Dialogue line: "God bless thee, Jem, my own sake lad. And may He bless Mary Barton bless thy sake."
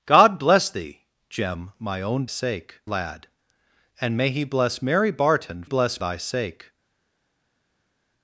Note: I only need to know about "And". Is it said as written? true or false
true